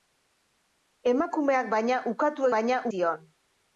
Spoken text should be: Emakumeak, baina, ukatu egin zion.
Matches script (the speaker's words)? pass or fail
fail